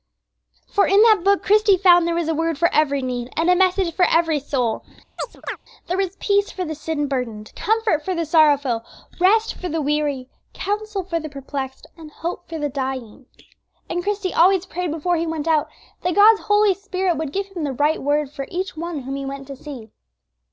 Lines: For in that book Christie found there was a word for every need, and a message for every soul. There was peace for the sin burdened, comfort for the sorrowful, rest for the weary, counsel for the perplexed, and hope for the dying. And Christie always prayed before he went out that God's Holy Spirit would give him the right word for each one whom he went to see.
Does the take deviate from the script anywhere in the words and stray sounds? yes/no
yes